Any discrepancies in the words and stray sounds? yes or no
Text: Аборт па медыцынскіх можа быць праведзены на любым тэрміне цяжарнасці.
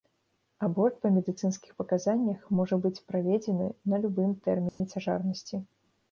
yes